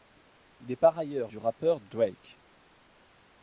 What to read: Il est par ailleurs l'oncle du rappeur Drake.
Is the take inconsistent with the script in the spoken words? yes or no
yes